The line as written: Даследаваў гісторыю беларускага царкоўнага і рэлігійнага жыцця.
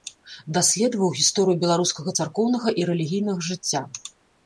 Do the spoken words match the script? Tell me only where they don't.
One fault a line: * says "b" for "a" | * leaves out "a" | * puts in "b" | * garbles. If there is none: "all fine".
all fine